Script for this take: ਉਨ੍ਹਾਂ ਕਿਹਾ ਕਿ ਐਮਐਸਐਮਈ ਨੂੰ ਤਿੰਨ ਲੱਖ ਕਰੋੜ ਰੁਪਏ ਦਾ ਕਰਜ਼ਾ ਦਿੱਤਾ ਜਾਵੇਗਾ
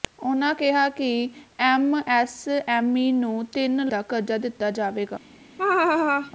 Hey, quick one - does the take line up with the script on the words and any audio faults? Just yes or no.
no